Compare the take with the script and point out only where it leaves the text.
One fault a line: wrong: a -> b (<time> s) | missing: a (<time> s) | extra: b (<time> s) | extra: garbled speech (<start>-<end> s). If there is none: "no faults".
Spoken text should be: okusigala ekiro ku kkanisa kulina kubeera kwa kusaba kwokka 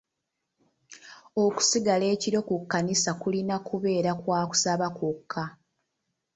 no faults